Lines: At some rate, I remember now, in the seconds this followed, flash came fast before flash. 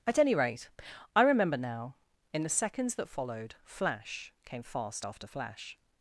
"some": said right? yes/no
no